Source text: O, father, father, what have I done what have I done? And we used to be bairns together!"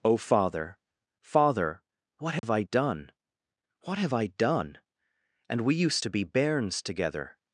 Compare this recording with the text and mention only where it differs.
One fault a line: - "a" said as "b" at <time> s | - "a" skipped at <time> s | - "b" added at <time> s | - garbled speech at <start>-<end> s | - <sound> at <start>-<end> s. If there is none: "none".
- dropout at 2.4-2.4 s